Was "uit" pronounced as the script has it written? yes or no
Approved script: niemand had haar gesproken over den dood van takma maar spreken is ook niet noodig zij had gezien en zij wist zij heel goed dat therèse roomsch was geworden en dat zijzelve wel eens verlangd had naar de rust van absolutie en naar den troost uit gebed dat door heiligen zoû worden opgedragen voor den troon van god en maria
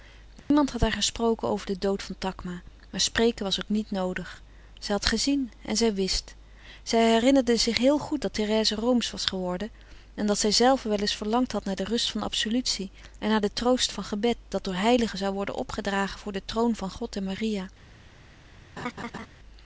no